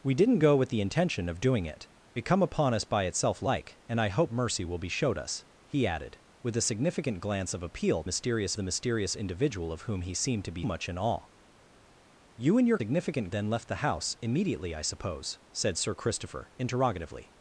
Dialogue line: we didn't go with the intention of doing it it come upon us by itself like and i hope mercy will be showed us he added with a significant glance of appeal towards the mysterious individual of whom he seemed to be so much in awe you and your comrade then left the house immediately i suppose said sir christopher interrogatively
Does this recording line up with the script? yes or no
no